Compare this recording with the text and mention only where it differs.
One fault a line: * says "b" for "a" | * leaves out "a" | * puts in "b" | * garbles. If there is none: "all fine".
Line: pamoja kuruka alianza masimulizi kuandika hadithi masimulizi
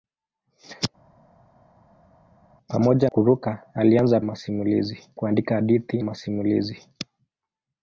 all fine